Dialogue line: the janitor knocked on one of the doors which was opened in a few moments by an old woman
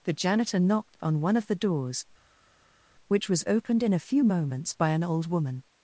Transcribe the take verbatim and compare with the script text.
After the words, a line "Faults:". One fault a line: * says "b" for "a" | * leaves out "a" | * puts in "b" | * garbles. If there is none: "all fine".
the janitor knocked on one of the doors which was opened in a few moments by an old woman
Faults:
all fine